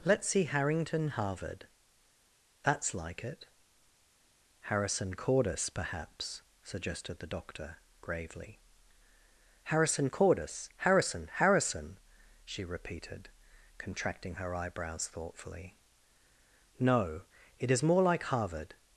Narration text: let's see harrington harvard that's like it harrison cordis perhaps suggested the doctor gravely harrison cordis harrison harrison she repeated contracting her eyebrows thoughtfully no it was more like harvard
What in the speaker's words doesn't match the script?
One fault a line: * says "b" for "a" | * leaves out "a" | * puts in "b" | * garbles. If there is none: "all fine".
* says "is" for "was"